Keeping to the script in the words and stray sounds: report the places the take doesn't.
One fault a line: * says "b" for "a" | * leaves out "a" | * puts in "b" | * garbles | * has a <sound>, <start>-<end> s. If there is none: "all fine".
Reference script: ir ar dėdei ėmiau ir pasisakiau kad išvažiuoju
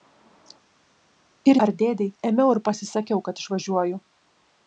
all fine